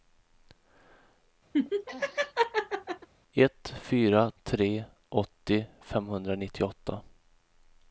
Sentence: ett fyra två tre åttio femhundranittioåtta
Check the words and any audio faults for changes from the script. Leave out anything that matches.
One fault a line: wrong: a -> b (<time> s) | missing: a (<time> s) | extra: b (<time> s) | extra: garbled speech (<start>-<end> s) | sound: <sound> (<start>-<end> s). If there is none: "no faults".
sound: laugh (1.5-3.1 s)
missing: två (4.3 s)